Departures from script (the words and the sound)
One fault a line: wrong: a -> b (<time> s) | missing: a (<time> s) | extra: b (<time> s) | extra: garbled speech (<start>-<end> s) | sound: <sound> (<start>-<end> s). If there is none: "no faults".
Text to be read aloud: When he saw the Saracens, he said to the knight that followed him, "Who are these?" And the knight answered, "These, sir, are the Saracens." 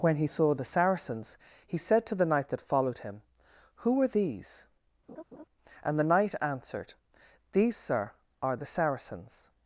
sound: laugh (5.1-5.4 s)